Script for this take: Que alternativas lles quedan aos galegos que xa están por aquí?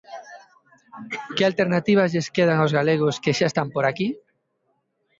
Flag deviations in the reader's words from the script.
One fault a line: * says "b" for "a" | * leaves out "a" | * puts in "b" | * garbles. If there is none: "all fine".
all fine